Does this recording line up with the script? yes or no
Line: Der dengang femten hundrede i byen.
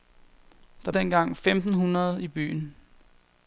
yes